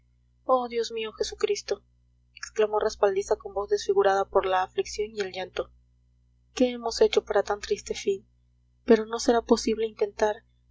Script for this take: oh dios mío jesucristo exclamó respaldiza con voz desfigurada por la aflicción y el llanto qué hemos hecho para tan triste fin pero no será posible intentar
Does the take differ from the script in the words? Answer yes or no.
no